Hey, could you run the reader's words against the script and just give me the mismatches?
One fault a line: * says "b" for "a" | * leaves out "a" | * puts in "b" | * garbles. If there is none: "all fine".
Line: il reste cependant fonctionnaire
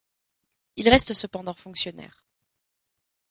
all fine